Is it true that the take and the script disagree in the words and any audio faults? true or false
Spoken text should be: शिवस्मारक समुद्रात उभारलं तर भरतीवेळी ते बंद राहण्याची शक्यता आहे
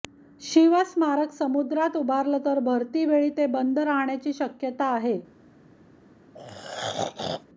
true